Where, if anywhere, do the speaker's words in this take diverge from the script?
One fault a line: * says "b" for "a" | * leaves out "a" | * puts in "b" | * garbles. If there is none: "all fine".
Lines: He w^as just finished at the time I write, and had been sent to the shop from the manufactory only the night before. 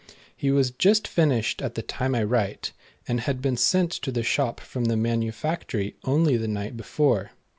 all fine